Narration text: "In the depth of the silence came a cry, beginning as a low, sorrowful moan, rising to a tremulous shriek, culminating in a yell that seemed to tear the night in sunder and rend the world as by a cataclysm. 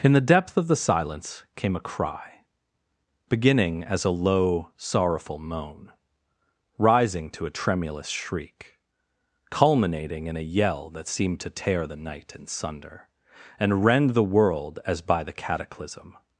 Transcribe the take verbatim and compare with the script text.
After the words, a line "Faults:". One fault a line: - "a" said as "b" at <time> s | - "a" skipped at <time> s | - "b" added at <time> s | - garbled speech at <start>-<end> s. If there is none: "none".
"In the depth of the silence came a cry, beginning as a low, sorrowful moan, rising to a tremulous shriek, culminating in a yell that seemed to tear the night in sunder and rend the world as by the cataclysm.
Faults:
- "a" said as "the" at 15.2 s